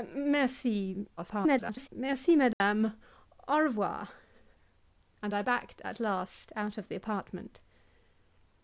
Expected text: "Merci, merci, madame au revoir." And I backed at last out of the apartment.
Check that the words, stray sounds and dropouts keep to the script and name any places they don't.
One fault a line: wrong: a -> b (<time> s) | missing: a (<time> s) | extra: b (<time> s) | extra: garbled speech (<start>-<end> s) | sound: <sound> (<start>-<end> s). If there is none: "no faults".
extra: garbled speech (1.2-1.9 s)
sound: dropout (2.5-2.6 s)